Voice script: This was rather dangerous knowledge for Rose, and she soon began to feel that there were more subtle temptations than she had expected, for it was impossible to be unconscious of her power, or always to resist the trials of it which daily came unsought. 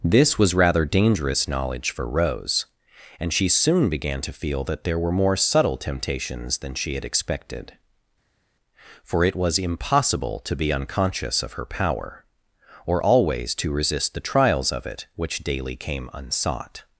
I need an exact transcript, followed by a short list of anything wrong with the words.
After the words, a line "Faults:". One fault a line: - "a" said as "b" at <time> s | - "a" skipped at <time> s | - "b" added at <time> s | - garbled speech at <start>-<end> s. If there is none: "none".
This was rather dangerous knowledge for Rose, and she soon began to feel that there were more subtle temptations than she had expected, for it was impossible to be unconscious of her power, or always to resist the trials of it which daily came unsought.
Faults:
none